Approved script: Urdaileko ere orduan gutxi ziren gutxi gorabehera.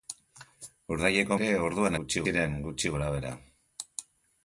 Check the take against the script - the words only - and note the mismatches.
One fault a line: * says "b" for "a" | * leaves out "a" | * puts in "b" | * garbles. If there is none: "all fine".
all fine